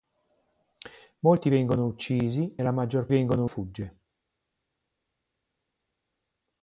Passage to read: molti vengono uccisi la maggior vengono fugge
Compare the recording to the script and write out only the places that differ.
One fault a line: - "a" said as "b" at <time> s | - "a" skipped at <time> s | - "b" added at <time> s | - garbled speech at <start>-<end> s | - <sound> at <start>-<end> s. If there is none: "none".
none